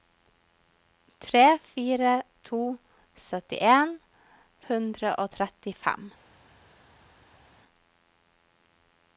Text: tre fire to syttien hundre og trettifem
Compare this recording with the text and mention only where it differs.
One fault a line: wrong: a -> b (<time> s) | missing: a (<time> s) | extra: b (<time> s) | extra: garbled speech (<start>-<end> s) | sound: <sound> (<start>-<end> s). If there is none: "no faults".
no faults